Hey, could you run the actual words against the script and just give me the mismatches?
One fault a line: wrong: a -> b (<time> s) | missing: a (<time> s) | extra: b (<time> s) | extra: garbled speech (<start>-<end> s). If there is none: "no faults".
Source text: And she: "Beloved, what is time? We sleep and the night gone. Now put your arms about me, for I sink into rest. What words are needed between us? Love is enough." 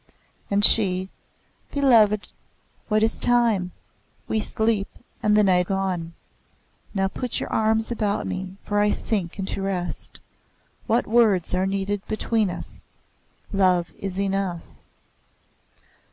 no faults